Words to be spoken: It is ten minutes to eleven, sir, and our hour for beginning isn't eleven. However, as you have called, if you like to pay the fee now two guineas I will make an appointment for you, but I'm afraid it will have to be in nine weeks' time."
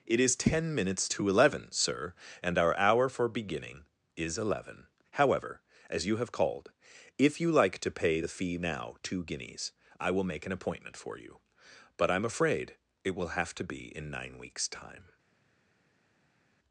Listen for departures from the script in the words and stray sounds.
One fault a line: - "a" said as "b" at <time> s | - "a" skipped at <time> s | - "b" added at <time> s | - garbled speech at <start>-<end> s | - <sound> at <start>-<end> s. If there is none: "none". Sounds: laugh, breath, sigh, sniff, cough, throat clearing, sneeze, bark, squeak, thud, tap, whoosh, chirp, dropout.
- "isn't" said as "is" at 4.1 s